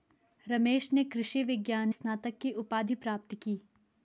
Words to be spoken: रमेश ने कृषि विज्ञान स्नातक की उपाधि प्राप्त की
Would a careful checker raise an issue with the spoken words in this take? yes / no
no